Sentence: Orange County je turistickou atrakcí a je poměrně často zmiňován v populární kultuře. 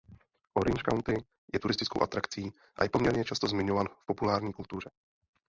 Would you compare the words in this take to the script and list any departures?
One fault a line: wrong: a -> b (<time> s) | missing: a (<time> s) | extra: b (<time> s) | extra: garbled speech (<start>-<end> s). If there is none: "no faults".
no faults